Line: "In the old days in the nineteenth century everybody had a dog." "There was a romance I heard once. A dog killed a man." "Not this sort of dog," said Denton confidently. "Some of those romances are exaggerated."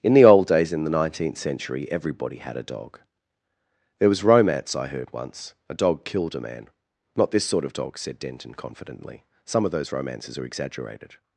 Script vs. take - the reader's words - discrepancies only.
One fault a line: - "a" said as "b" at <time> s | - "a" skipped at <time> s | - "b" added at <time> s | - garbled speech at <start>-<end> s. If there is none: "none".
- "a" skipped at 4.2 s